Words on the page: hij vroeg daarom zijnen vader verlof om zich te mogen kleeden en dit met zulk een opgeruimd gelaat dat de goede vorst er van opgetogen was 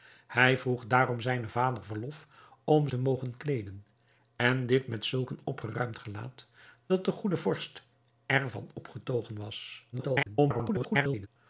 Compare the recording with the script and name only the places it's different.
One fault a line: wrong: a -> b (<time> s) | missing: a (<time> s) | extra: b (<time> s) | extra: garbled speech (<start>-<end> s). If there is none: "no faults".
missing: zich (2.9 s)
extra: garbled speech (9.9-11.3 s)